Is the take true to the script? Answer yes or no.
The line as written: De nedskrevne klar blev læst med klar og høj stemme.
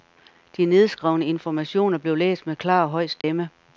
no